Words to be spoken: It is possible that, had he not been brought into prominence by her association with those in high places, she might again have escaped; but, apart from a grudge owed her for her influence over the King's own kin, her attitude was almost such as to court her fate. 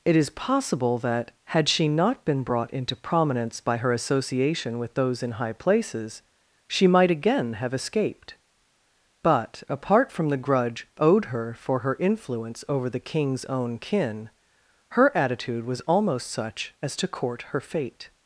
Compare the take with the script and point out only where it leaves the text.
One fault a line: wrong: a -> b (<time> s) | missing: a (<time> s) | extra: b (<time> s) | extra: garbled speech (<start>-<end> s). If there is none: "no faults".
wrong: he -> she (1.7 s)
wrong: a -> the (10.3 s)